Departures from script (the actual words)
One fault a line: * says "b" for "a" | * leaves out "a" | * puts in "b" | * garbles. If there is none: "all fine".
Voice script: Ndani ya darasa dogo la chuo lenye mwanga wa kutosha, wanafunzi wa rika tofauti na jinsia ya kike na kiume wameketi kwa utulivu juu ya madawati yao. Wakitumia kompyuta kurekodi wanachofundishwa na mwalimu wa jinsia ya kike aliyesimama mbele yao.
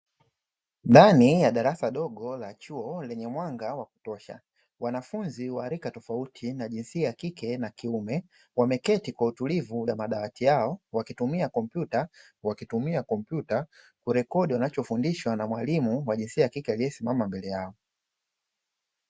* leaves out "juu"
* puts in "wakitumia kompyuta"